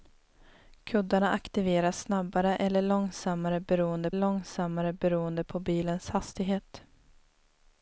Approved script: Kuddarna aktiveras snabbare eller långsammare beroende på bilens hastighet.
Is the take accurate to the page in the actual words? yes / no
no